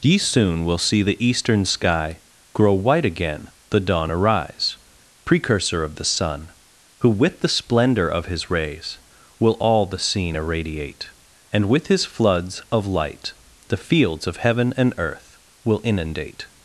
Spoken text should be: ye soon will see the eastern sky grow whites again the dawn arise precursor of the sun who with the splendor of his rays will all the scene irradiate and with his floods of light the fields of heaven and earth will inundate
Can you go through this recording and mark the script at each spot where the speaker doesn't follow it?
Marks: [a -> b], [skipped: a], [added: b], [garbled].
ye soon will see the eastern sky grow [whites -> white] again the dawn arise precursor of the sun who with the splendor of his rays will all the scene irradiate and with his floods of light the fields of heaven and earth will inundate